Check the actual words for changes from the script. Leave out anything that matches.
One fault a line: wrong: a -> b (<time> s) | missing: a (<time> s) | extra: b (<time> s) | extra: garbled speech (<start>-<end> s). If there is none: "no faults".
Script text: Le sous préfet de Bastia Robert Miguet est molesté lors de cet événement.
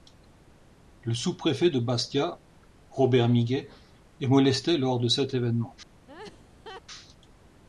no faults